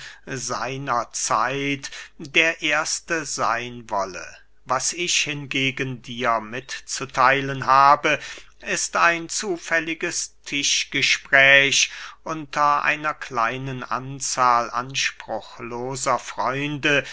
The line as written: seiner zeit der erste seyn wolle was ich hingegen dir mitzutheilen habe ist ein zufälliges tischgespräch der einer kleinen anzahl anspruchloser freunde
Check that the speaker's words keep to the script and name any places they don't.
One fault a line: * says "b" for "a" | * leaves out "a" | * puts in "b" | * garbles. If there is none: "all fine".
* says "unter" for "der"